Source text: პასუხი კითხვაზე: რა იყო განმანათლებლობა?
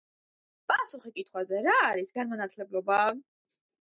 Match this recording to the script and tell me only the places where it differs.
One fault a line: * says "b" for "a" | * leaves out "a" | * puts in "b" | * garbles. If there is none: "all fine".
* says "არის" for "იყო"